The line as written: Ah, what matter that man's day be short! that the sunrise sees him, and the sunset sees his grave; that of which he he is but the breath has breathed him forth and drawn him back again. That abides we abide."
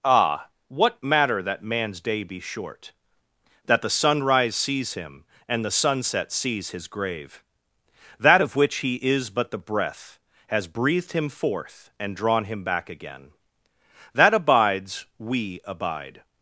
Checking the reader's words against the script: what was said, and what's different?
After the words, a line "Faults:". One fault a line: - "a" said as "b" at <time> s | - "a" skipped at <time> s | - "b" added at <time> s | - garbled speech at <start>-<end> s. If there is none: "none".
Ah, what matter that man's day be short! that the sunrise sees him, and the sunset sees his grave; that of which he is but the breath has breathed him forth and drawn him back again. That abides we abide."
Faults:
- "he" skipped at 9.0 s